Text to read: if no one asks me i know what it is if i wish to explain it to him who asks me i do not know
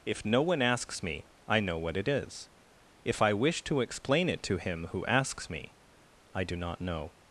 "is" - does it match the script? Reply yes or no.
yes